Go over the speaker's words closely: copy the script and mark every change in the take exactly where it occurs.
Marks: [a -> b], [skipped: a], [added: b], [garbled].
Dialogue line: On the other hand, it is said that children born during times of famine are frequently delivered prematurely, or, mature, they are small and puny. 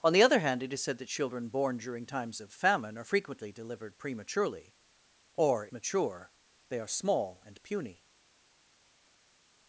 On the other hand, it is said that children born during times of famine are frequently delivered prematurely, or, mature, they are small and puny.